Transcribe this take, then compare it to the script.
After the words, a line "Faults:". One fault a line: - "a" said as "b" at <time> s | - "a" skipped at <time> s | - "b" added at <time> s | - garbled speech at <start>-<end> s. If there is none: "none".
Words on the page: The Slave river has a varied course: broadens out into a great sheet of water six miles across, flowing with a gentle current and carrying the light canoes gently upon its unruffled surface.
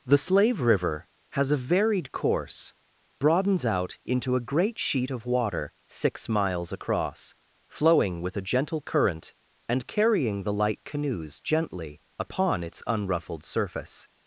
The Slave river has a varied course: broadens out into a great sheet of water six miles across, flowing with a gentle current and carrying the light canoes gently upon its unruffled surface.
Faults:
none